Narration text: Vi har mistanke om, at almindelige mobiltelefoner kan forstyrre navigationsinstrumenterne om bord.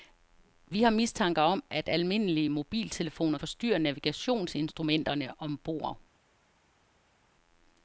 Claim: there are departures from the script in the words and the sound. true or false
true